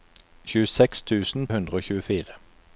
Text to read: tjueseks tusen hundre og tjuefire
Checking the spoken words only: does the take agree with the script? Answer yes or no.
yes